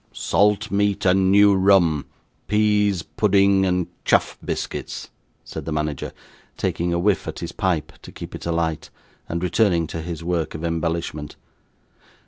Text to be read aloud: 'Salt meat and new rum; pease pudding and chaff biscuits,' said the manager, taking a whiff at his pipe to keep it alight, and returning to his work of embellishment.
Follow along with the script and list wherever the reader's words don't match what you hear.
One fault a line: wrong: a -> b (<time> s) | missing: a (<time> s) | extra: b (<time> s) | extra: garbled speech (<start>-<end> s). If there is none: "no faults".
no faults